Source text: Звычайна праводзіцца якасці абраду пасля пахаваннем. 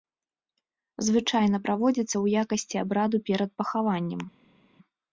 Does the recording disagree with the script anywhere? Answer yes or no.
yes